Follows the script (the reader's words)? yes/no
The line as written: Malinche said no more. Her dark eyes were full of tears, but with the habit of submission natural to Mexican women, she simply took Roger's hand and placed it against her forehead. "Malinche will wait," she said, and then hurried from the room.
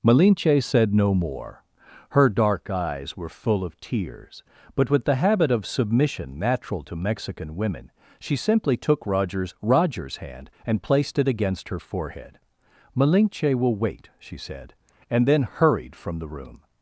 no